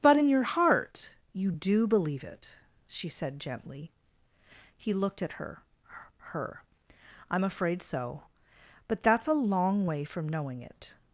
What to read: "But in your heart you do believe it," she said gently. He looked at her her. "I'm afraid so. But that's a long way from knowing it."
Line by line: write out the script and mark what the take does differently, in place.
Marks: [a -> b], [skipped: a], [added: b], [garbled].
"But in your heart you do believe it," she said gently. He looked at her her. "I'm afraid so. But that's a long way from knowing it."